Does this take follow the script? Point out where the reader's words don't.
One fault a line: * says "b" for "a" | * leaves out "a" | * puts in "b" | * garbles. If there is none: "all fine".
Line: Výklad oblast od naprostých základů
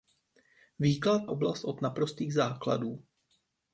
all fine